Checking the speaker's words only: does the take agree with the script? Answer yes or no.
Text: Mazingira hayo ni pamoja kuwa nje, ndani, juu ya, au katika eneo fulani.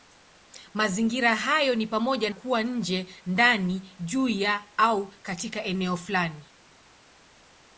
yes